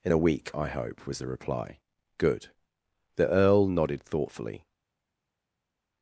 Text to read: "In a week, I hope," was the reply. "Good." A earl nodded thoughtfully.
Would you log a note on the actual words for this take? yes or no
yes